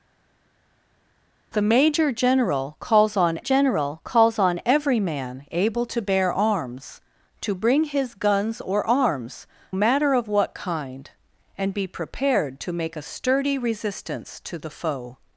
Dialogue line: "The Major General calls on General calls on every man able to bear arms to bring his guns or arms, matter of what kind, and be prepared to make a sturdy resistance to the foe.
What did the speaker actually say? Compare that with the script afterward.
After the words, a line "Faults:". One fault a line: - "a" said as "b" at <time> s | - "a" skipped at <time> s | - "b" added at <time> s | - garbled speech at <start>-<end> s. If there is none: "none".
"The Major General calls on General calls on every man able to bear arms to bring his guns or arms, matter of what kind, and be prepared to make a sturdy resistance to the foe.
Faults:
none